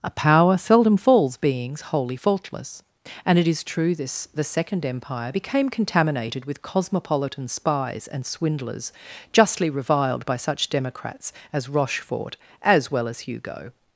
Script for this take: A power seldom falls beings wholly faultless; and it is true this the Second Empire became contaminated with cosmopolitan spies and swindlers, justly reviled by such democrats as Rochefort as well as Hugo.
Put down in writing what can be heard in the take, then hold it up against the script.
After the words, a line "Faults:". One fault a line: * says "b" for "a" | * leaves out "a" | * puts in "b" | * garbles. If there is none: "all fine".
A power seldom falls beings wholly faultless; and it is true this the Second Empire became contaminated with cosmopolitan spies and swindlers, justly reviled by such democrats as Rochefort as well as Hugo.
Faults:
all fine